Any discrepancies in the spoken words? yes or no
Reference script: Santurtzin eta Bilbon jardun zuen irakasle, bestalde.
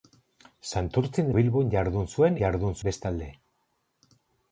yes